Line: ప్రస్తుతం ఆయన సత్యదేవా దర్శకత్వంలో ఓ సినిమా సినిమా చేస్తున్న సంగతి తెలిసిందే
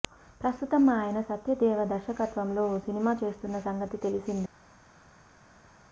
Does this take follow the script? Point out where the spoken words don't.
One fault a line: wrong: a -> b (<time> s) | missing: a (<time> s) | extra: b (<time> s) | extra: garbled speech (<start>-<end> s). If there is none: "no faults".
missing: సినిమా (3.1 s)